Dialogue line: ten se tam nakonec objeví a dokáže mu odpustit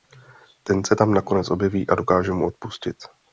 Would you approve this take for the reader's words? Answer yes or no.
yes